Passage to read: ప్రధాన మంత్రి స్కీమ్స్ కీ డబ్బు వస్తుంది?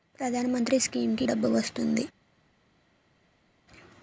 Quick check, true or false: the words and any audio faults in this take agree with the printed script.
true